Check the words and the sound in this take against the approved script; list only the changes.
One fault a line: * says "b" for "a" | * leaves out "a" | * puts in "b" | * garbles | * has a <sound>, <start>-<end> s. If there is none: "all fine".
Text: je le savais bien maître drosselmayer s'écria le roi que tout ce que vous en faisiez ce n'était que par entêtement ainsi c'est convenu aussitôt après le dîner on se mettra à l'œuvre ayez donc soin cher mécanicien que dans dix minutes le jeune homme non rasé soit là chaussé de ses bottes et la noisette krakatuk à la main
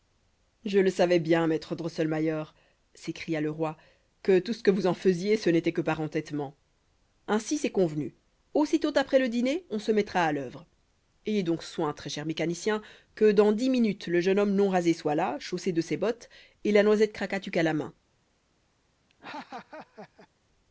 * puts in "très"
* has a laugh, 19.1-20.3 s